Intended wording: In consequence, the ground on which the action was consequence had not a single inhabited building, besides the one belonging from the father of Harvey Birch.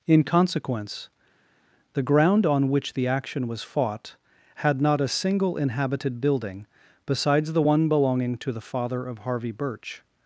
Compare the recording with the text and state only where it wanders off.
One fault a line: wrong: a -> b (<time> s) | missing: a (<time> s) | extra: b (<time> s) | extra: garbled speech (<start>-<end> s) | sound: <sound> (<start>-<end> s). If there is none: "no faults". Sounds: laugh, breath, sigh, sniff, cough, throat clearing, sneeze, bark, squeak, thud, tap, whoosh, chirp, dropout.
wrong: consequence -> fought (3.6 s)
wrong: from -> to (8.4 s)